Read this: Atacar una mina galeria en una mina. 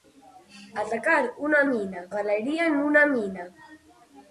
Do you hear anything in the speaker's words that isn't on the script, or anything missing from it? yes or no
no